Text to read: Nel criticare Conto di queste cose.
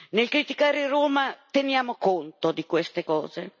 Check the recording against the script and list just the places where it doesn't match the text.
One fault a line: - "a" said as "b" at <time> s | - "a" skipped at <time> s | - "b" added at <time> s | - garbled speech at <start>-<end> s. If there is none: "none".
- "Roma teniamo" added at 0.9 s